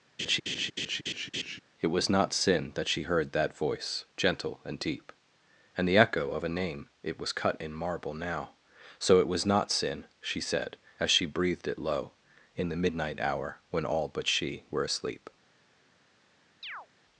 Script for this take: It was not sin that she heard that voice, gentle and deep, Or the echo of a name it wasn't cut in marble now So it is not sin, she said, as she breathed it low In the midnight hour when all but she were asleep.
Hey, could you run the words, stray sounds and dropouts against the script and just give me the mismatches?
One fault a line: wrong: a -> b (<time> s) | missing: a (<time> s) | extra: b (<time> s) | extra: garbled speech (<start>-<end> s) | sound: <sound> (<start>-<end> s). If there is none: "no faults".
sound: laugh (0.2-1.6 s)
wrong: Or -> And (5.8 s)
wrong: wasn't -> was (7.2 s)
wrong: is -> was (9.3 s)
sound: chirp (16.6-16.9 s)